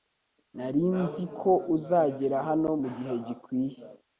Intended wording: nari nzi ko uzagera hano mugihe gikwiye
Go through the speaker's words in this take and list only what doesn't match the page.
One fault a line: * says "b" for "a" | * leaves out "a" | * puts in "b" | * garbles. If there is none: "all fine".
all fine